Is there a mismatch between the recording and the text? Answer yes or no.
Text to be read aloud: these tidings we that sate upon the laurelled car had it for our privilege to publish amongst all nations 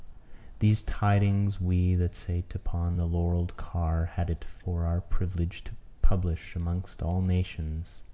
no